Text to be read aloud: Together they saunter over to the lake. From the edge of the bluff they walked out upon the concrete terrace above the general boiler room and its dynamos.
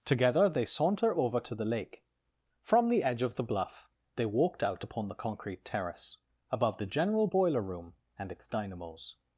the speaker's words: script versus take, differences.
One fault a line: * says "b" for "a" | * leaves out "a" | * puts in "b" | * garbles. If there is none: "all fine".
all fine